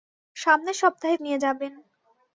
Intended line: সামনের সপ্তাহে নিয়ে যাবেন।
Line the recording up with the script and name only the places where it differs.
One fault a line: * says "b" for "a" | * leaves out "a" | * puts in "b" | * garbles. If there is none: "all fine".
all fine